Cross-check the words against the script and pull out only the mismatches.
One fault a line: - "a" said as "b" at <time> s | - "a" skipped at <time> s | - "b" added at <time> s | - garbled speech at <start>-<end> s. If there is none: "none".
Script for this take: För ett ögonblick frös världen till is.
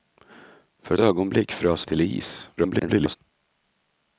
- "ett" skipped at 0.9 s
- "världen" skipped at 1.9 s
- garbled speech at 2.6-3.2 s